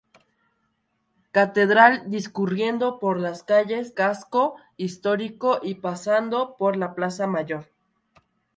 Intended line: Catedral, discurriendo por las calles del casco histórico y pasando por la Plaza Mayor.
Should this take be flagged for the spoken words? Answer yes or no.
yes